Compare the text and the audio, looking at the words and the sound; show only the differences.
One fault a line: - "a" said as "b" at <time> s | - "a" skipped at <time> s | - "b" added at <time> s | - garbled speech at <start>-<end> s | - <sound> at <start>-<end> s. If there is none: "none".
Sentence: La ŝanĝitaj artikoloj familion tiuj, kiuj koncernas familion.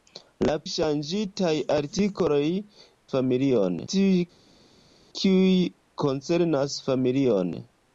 none